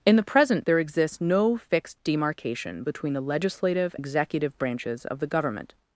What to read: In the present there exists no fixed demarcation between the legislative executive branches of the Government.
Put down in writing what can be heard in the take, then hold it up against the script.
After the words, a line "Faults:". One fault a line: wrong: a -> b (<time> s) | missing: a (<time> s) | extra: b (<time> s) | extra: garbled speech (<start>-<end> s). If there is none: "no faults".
In the present there exists no fixed demarcation between the legislative executive branches of the Government.
Faults:
no faults